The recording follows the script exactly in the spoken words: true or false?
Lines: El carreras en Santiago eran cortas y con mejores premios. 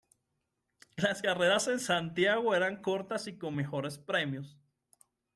false